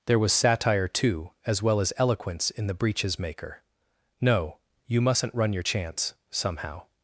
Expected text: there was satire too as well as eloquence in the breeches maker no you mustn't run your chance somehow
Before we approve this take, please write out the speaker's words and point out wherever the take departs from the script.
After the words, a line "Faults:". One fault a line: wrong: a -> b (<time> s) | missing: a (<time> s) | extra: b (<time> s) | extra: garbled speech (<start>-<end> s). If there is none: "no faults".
there was satire too as well as eloquence in the breeches maker no you mustn't run your chance somehow
Faults:
no faults